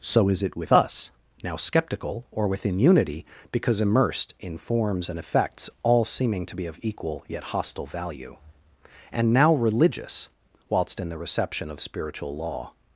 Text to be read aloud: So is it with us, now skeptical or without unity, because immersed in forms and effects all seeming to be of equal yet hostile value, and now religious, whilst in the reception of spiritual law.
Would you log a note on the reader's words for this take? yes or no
yes